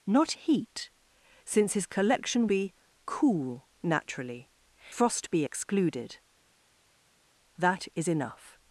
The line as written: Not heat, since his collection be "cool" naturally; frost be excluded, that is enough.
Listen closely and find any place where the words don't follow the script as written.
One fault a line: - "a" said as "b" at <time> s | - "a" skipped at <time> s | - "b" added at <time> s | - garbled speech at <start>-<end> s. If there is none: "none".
none